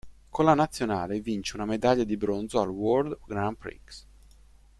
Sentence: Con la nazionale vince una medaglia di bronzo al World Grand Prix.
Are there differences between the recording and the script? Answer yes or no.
no